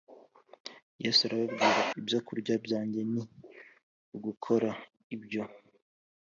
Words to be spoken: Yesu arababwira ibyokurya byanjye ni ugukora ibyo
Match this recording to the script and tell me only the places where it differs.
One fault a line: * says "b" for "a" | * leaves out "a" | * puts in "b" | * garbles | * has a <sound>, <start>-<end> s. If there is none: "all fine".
all fine